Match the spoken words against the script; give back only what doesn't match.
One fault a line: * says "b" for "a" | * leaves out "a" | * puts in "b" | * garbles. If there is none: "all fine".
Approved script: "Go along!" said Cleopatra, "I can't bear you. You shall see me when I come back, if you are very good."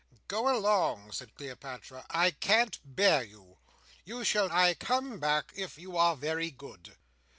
* leaves out "see me when"